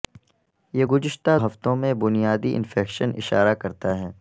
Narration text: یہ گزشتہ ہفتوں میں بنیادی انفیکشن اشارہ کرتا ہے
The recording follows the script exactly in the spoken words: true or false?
true